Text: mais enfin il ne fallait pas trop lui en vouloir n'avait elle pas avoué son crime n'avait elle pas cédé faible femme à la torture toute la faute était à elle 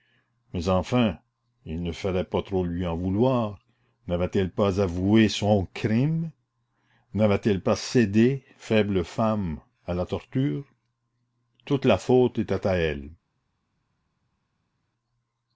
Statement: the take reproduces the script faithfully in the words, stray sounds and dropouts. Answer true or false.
true